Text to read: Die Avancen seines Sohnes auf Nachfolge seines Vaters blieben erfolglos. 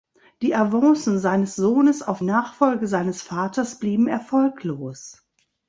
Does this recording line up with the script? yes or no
yes